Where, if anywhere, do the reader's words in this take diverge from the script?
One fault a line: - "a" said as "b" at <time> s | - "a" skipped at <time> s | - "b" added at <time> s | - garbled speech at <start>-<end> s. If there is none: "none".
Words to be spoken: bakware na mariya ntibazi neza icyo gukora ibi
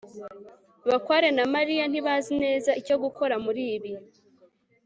- "muri" added at 3.4 s